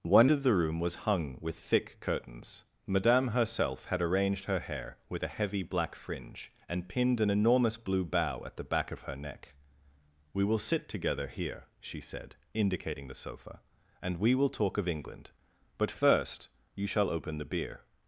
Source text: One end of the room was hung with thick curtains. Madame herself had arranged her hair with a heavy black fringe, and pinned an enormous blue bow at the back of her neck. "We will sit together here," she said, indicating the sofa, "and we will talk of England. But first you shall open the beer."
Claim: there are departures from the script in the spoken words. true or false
true